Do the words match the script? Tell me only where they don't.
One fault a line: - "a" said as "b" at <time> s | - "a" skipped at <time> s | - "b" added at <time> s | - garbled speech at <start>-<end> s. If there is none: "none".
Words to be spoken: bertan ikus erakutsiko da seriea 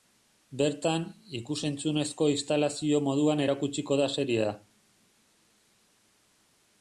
- "entzunezko instalazio moduan" added at 1.7 s